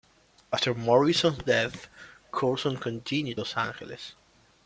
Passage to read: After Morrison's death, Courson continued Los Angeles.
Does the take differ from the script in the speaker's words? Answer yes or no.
no